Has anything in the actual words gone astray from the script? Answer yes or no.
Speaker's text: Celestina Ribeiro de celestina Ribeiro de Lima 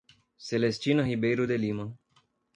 yes